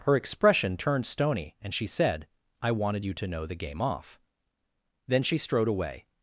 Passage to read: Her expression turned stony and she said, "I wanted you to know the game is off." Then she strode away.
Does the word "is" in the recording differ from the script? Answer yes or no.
yes